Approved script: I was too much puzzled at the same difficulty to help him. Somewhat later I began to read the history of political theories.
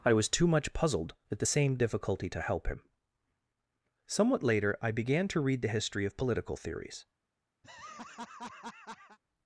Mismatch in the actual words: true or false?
false